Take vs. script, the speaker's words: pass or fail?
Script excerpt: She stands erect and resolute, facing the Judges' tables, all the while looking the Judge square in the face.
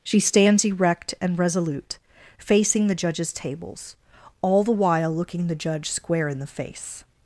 pass